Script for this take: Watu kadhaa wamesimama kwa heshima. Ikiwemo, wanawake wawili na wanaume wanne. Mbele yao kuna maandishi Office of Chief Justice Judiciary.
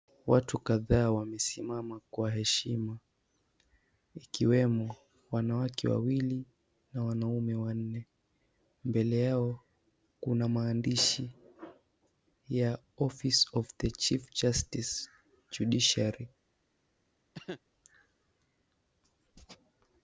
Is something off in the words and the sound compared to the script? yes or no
yes